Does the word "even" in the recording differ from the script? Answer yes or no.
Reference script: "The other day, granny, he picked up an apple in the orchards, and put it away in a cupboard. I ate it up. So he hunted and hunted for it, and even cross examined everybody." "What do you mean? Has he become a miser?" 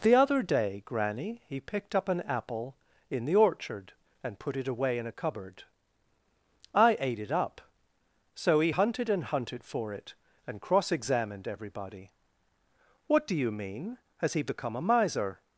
yes